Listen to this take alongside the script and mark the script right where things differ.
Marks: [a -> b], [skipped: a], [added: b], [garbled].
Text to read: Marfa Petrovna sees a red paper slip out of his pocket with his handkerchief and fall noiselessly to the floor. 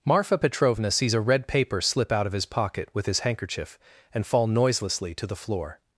Marfa Petrovna sees a red paper slip out of his pocket with his handkerchief and fall noiselessly to the floor.